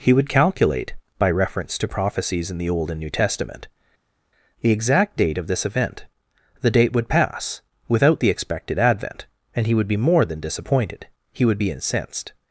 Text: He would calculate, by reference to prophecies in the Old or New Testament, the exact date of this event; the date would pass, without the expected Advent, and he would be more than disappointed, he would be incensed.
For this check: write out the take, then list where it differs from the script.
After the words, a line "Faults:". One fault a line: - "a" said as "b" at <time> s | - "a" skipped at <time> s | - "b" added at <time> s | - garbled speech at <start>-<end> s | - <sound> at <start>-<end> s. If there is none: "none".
He would calculate, by reference to prophecies in the Old and New Testament, the exact date of this event; the date would pass, without the expected Advent, and he would be more than disappointed, he would be incensed.
Faults:
- "or" said as "and" at 2.9 s